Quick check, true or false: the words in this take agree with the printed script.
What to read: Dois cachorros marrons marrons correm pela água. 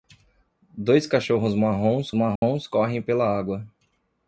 true